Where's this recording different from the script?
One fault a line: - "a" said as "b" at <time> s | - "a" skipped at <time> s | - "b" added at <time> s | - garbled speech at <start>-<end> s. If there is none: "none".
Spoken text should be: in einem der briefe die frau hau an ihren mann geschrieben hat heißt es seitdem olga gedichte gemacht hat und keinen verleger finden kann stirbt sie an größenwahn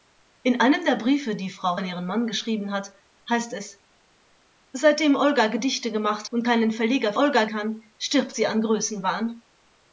- "hau" skipped at 1.8 s
- "hat" skipped at 6.3 s
- "finden" said as "olga" at 7.1 s